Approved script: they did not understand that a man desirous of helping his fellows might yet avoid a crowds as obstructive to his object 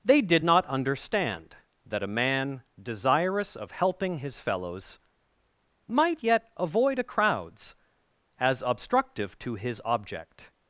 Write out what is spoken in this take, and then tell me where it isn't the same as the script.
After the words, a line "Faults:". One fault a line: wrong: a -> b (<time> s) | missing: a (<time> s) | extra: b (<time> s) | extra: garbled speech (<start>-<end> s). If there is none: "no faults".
they did not understand that a man desirous of helping his fellows might yet avoid a crowds as obstructive to his object
Faults:
no faults